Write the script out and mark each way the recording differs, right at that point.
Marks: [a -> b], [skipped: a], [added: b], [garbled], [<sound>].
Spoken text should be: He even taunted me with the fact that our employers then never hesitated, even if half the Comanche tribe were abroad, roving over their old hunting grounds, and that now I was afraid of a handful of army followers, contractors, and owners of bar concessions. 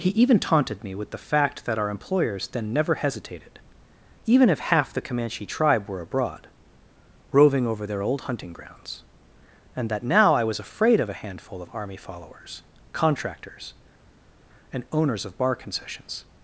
He even taunted me with the fact that our employers then never hesitated, even if half the Comanche tribe were abroad, roving over their old hunting grounds, and that now I was afraid of a handful of army followers, contractors, and owners of bar concessions.